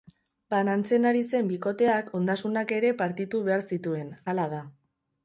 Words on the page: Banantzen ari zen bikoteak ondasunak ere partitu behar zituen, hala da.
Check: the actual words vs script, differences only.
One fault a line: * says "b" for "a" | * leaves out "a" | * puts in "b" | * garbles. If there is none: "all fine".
all fine